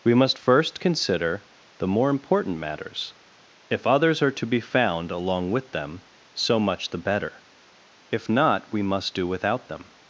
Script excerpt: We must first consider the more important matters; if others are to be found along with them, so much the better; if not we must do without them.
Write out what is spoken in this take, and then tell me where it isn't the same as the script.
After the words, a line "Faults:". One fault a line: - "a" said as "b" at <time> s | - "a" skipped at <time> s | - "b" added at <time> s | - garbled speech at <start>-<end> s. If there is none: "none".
We must first consider the more important matters; if others are to be found along with them, so much the better; if not we must do without them.
Faults:
none